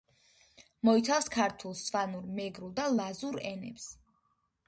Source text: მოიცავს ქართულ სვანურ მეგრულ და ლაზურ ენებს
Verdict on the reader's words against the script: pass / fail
pass